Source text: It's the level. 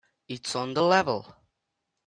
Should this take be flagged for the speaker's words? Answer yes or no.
yes